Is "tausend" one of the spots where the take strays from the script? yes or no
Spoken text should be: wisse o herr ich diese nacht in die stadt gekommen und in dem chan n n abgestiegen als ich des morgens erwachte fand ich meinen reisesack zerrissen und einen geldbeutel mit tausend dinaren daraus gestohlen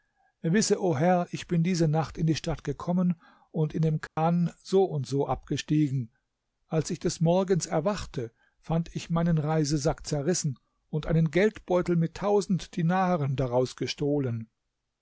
no